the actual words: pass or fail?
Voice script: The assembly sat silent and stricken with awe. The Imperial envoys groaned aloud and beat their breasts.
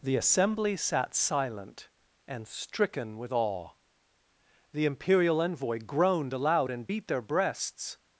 fail